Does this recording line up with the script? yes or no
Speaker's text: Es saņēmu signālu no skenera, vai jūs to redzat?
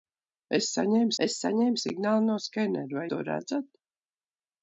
no